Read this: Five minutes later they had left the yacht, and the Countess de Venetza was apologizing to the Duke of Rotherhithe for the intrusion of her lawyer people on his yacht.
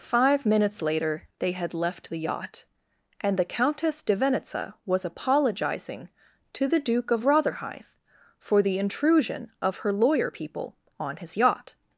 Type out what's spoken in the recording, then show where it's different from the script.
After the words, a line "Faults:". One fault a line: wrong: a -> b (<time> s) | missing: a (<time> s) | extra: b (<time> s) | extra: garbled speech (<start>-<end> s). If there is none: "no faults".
Five minutes later they had left the yacht, and the Countess de Venetza was apologizing to the Duke of Rotherhithe for the intrusion of her lawyer people on his yacht.
Faults:
no faults